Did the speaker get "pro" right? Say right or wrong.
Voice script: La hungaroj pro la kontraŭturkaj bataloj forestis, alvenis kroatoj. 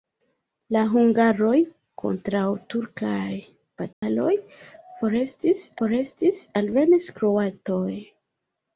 wrong